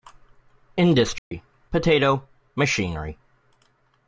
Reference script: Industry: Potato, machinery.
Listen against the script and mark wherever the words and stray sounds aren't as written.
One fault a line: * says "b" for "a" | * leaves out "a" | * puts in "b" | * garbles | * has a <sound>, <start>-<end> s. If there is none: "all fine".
* has a dropout, 1.2-1.3 s